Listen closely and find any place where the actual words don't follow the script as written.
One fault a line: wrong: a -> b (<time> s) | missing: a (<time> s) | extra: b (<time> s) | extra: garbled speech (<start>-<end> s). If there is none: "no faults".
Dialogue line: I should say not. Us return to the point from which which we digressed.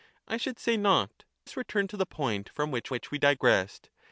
no faults